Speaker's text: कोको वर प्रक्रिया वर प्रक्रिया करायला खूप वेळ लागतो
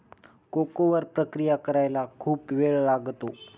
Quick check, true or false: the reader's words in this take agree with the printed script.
false